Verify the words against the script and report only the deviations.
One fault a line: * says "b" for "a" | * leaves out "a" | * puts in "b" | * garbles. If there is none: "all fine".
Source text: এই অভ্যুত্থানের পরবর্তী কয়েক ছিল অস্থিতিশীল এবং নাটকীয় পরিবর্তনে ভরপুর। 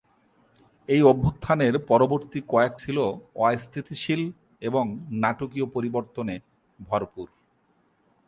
all fine